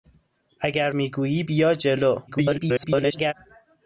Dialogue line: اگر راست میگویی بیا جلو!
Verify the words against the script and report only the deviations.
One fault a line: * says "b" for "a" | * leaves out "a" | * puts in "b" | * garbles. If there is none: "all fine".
* leaves out "راست"
* garbles